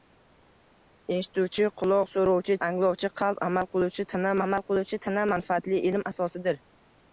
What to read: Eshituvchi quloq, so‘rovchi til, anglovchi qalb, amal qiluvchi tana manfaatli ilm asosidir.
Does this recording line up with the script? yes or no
no